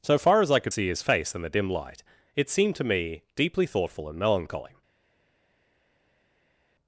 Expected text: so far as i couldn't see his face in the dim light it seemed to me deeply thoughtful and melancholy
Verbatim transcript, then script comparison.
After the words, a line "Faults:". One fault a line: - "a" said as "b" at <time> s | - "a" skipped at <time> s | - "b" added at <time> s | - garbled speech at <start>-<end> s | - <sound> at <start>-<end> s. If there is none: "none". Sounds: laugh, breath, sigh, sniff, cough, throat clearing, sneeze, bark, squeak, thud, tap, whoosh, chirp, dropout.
so far as i could see his face in the dim light it seemed to me deeply thoughtful and melancholy
Faults:
- "couldn't" said as "could" at 0.6 s